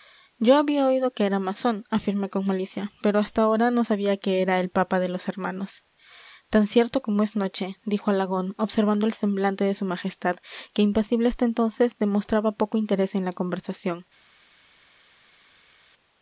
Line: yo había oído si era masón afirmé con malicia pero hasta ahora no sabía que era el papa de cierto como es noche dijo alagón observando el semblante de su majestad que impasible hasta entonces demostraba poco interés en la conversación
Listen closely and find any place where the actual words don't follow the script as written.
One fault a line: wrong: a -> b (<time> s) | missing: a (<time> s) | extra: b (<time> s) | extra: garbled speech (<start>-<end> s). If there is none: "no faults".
wrong: si -> que (1.1 s)
extra: los hermanos tan (5.1 s)